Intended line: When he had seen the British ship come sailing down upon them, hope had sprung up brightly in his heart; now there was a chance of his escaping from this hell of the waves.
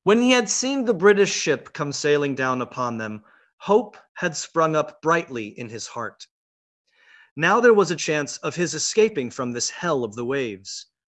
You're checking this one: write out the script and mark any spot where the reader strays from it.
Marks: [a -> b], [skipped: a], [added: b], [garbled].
When he had seen the British ship come sailing down upon them, hope had sprung up brightly in his heart; now there was a chance of his escaping from this hell of the waves.